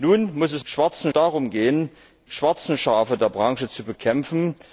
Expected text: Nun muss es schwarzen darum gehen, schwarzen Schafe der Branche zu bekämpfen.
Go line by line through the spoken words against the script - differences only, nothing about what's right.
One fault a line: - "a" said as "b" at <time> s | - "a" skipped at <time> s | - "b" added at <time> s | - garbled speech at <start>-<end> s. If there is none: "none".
none